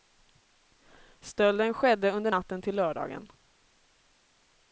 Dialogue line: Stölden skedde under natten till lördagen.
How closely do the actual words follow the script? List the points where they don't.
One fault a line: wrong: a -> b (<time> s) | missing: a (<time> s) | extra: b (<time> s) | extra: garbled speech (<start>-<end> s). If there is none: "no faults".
no faults